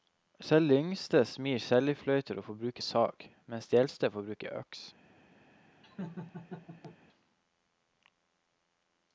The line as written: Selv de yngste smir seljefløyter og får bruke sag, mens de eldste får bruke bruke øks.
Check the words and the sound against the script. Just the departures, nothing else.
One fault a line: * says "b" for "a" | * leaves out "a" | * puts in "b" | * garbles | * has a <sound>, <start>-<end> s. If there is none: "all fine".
* leaves out "bruke"
* has a laugh, 5.8-7.0 s